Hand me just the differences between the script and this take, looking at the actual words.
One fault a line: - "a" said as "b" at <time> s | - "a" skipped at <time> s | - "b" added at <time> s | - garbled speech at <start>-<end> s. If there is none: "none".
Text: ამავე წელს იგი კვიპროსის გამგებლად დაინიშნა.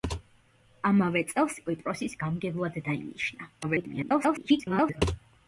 - "იგი" skipped at 1.6 s
- garbled speech at 3.6-5.0 s